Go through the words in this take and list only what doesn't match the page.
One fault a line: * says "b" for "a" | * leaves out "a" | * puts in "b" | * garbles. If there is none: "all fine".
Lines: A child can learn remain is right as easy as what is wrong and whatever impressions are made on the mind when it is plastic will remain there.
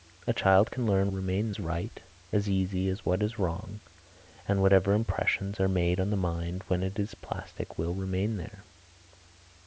all fine